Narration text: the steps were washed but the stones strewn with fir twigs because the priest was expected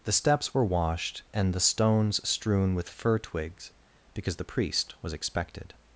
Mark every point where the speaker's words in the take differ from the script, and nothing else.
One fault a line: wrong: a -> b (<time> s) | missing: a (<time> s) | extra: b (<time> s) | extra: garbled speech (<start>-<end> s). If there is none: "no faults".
wrong: but -> and (1.3 s)